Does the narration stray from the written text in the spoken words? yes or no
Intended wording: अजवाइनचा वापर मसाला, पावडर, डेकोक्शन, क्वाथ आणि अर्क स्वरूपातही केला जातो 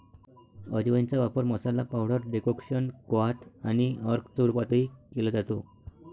no